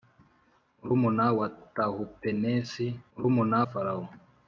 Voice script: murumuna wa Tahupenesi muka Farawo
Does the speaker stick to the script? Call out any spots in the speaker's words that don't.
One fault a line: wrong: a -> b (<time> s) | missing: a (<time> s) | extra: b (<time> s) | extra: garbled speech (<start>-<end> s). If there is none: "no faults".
wrong: muka -> murumuna (3.1 s)